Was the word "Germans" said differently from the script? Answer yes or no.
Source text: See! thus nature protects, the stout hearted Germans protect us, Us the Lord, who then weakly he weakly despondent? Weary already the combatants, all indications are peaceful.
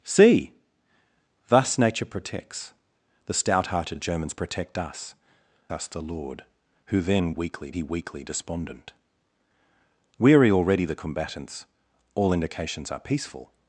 no